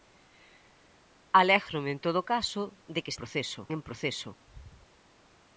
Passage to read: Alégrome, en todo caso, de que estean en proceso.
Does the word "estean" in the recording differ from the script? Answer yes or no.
yes